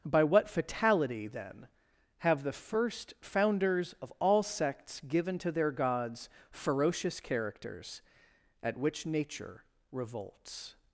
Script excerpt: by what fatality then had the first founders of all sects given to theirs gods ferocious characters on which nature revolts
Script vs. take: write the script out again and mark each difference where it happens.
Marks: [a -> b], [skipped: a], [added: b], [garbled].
by what fatality then [had -> have] the first founders of all sects given to [theirs -> their] gods ferocious characters [on -> at] which nature revolts